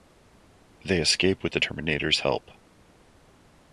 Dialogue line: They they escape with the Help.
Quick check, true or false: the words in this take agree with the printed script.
false